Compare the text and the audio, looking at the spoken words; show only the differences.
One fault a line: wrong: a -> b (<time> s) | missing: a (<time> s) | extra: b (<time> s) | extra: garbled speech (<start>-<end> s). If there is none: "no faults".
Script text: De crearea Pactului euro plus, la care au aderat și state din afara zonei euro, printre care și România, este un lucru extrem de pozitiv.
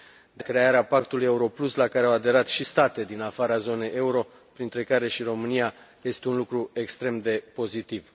no faults